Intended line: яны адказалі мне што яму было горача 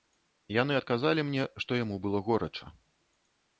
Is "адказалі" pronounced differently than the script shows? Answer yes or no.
no